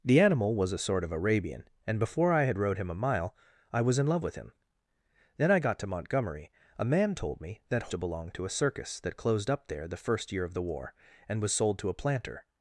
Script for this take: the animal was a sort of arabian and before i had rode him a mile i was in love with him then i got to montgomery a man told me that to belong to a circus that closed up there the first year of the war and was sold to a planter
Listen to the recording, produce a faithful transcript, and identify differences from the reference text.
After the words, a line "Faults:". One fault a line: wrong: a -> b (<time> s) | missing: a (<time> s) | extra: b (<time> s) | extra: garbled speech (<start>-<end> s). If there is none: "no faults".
the animal was a sort of arabian and before i had rode him a mile i was in love with him then i got to montgomery a man told me that to belong to a circus that closed up there the first year of the war and was sold to a planter
Faults:
no faults